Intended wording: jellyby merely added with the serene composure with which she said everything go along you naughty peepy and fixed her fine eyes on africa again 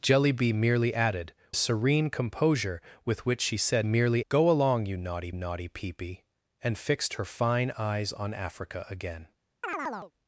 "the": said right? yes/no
no